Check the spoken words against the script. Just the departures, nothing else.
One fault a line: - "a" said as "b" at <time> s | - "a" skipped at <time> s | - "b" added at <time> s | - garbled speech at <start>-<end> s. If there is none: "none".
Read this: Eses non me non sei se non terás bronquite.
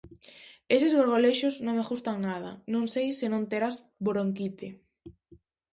- "gorgolexos" added at 1.0 s
- "gustan nada" added at 1.9 s